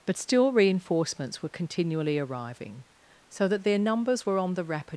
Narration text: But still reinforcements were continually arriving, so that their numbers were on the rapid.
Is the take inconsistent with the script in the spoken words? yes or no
no